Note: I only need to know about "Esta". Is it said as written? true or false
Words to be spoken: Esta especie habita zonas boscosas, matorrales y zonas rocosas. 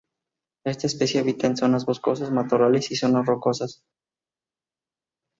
true